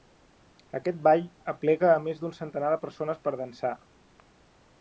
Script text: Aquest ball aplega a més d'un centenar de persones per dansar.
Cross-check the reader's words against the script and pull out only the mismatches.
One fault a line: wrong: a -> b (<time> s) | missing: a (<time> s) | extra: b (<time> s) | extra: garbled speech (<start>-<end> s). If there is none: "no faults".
no faults